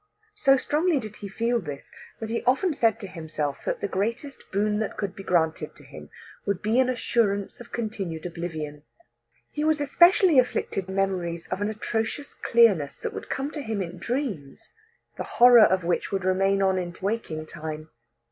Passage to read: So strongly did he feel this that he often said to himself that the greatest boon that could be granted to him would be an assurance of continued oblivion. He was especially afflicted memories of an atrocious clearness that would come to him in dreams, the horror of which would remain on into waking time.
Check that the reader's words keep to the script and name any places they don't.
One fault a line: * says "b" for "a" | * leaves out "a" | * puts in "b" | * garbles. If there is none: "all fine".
all fine